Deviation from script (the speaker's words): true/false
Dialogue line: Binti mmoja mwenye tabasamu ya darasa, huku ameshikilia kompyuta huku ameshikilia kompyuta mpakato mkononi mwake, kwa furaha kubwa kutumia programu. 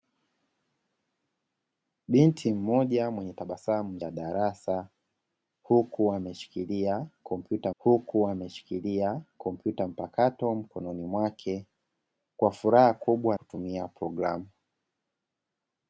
false